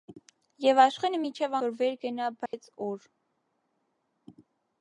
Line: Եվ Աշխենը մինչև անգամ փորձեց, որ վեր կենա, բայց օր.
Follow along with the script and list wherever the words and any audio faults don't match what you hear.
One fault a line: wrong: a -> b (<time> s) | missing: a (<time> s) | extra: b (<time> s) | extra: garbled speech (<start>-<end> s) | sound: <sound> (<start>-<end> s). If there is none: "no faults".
missing: անգամ փորձեց (1.6 s)
sound: dropout (2.5-2.5 s)